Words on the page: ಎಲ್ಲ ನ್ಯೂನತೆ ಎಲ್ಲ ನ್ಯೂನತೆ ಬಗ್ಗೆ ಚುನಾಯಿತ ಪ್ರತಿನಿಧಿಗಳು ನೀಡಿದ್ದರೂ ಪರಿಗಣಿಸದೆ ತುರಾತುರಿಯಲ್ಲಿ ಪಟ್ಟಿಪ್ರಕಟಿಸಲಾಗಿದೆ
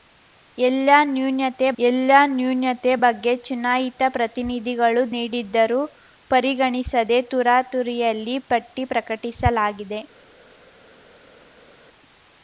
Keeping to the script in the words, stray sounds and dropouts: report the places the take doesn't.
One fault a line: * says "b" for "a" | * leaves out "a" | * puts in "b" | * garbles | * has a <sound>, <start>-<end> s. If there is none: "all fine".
all fine